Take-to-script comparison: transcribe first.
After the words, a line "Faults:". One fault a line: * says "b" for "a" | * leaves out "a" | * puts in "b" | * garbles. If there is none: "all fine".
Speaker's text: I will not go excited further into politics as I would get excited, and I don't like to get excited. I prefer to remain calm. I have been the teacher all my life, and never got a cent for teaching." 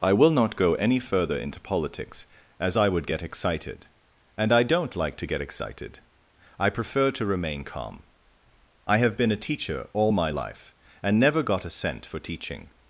I will not go any further into politics as I would get excited, and I don't like to get excited. I prefer to remain calm. I have been a teacher all my life, and never got a cent for teaching."
Faults:
* says "any" for "excited"
* says "a" for "the"